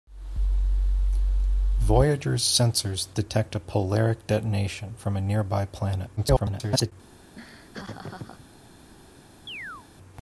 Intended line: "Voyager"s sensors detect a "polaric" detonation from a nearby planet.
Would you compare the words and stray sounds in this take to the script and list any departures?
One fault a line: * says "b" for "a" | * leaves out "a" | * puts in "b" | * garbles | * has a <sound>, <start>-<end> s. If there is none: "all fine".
* garbles
* has a laugh, 7.4-8.5 s
* has a chirp, 9.5-9.9 s